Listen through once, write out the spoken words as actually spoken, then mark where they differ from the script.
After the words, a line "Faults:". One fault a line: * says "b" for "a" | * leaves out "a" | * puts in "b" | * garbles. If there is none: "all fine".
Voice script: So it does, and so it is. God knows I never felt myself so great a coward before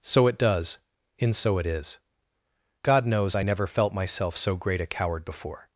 So it does, in so it is. God knows I never felt myself so great a coward before
Faults:
* says "in" for "and"